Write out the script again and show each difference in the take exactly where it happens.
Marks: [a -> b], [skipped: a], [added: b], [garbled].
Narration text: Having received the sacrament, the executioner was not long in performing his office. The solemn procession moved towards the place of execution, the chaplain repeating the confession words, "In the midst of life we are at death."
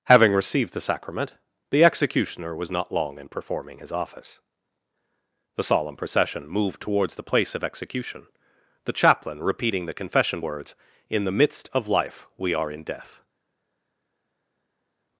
Having received the sacrament, the executioner was not long in performing his office. The solemn procession moved towards the place of execution, the chaplain repeating the confession words, "In the midst of life we are [at -> in] death."